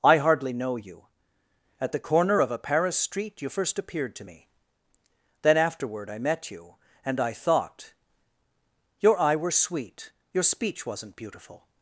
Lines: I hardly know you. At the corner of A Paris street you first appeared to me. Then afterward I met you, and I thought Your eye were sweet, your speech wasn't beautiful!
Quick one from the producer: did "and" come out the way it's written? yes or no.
yes